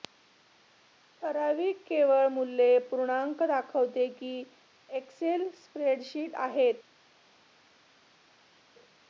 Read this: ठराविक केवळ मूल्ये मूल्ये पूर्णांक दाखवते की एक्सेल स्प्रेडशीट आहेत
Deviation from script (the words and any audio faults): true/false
true